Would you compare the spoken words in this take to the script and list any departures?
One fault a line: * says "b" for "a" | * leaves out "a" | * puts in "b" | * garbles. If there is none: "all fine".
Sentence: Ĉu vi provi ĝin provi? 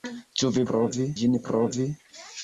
all fine